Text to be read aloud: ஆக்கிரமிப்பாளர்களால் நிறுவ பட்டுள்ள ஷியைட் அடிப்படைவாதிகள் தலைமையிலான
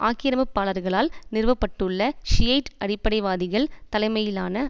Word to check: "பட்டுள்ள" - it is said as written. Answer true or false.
true